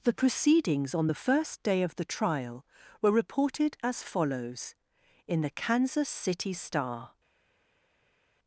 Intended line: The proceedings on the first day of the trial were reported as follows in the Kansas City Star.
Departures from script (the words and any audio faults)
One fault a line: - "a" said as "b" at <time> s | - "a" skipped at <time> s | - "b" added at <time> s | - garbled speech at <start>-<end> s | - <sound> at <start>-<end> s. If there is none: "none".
none